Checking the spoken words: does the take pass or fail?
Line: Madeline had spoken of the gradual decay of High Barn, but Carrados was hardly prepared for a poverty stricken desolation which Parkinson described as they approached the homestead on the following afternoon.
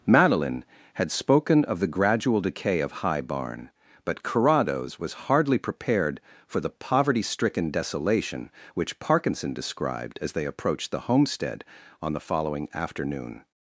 fail